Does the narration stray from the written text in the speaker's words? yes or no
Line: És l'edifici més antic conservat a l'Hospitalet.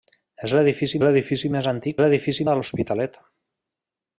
yes